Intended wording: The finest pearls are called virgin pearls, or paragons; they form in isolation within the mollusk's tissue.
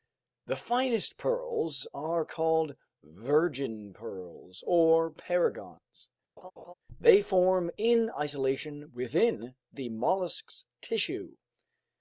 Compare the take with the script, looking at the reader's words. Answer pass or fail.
pass